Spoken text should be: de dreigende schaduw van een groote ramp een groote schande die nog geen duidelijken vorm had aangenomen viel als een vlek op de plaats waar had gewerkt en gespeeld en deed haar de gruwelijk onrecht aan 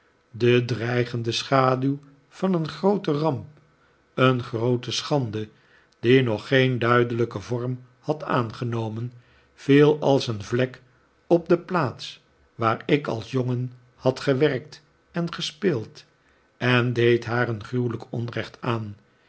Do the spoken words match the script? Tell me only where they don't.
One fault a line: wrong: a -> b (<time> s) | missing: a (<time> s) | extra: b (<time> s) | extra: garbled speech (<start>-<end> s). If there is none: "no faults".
extra: ik als jongen (12.8 s)
wrong: de -> een (17.5 s)